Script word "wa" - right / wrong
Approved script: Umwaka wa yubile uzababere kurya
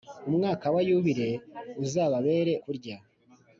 right